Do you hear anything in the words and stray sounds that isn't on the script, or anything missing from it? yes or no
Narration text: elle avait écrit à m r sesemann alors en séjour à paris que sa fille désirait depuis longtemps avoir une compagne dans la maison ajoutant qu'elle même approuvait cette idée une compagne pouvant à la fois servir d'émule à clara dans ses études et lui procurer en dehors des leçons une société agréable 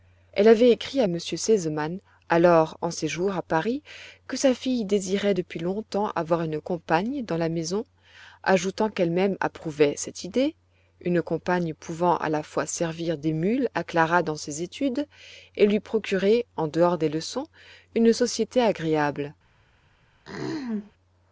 yes